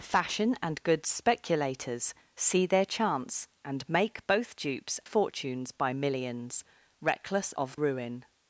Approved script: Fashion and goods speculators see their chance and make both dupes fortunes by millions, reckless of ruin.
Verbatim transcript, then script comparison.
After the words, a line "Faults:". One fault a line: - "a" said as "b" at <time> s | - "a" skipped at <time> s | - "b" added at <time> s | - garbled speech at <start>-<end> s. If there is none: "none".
Fashion and goods speculators see their chance and make both dupes fortunes by millions, reckless of ruin.
Faults:
none